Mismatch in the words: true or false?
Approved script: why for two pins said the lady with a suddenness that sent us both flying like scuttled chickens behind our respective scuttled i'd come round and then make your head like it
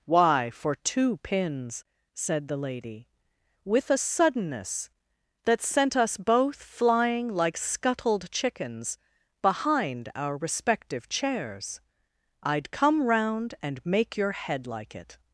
true